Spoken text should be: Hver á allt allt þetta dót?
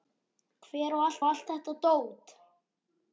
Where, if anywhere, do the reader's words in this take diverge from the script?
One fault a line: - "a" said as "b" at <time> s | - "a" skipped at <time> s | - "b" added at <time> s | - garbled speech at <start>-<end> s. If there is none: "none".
none